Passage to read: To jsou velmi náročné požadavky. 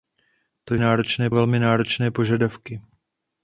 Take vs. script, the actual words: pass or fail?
fail